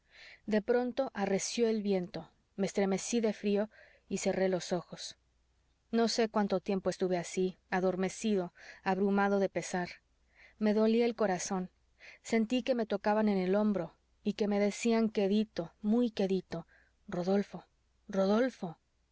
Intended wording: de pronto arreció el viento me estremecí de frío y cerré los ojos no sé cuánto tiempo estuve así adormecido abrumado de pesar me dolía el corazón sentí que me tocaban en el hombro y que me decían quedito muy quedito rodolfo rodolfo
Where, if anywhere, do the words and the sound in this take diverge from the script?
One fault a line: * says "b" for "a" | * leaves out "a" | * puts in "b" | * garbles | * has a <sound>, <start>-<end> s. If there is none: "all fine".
all fine